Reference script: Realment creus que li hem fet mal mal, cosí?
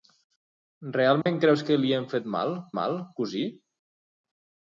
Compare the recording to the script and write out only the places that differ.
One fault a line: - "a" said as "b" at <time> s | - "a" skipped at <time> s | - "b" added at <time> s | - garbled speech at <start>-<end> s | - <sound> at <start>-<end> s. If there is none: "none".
- dropout at 1.2-1.3 s